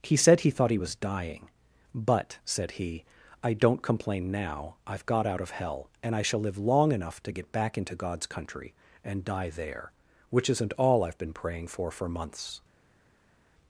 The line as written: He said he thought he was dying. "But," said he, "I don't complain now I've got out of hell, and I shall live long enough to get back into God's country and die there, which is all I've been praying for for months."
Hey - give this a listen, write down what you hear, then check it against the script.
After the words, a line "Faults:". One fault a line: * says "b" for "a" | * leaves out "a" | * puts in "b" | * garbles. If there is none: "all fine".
He said he thought he was dying. "But," said he, "I don't complain now I've got out of hell, and I shall live long enough to get back into God's country and die there, which isn't all I've been praying for for months."
Faults:
* says "isn't" for "is"